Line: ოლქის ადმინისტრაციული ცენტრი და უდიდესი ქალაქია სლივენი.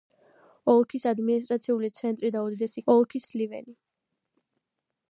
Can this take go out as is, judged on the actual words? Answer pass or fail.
fail